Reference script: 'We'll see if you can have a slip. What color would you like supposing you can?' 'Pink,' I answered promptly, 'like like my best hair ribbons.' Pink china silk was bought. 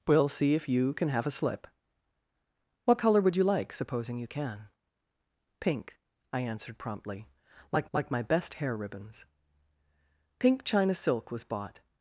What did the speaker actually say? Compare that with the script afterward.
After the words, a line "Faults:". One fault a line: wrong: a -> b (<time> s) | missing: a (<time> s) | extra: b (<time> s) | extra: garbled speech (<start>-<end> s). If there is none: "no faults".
'We'll see if you can have a slip. What color would you like supposing you can?' 'Pink,' I answered promptly, 'like like my best hair ribbons.' Pink china silk was bought.
Faults:
no faults